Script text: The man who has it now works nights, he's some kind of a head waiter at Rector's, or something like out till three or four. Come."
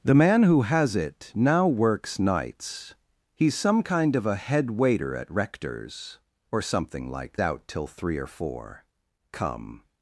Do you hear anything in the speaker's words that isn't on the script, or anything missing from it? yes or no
no